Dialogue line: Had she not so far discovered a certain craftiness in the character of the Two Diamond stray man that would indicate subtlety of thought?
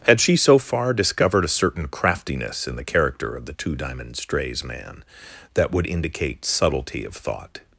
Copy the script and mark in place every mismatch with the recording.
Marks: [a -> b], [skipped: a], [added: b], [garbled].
Had she [skipped: not] so far discovered a certain craftiness in the character of the Two Diamond [stray -> strays] man that would indicate subtlety of thought?